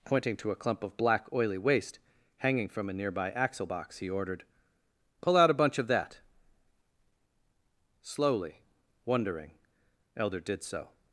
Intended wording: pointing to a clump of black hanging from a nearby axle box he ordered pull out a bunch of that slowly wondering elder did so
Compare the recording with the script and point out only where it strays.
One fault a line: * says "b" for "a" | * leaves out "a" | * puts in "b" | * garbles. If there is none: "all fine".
* puts in "oily waste"